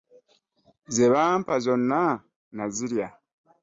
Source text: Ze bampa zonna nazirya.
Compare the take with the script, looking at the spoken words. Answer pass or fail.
pass